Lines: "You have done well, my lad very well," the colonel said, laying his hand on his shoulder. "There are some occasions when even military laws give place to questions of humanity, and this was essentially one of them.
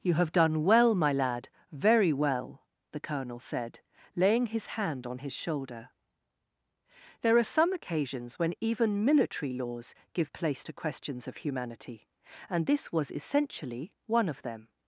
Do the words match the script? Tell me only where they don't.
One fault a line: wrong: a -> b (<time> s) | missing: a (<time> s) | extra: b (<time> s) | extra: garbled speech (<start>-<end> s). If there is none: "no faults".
no faults